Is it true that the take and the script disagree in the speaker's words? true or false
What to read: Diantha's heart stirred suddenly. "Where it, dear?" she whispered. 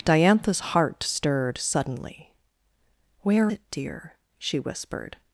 false